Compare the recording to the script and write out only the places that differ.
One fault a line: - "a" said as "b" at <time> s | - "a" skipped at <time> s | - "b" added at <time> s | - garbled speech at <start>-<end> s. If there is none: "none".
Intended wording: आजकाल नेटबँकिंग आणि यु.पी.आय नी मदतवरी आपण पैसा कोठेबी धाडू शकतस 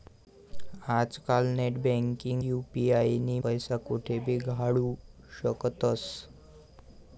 - "आणि" skipped at 2.4 s
- "मदतवरी आपण" skipped at 3.4 s